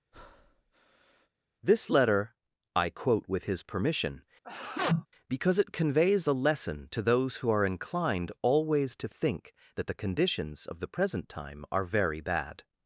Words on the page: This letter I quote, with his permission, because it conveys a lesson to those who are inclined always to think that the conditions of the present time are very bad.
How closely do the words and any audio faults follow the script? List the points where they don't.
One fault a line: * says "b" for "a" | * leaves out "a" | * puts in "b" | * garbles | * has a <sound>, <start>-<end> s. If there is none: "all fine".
* has a breath, 0.1-1.3 s
* has a sneeze, 4.4-5.1 s